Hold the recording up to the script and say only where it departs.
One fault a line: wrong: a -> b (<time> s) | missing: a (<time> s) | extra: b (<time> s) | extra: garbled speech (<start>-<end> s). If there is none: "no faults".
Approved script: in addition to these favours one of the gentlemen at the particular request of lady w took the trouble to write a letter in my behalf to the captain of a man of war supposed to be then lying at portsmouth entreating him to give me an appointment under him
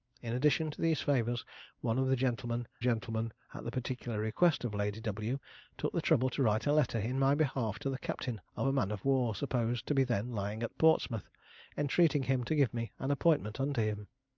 extra: gentlemen (2.8 s)